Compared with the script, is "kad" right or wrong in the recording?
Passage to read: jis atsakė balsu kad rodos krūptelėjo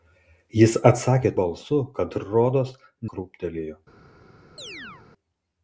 right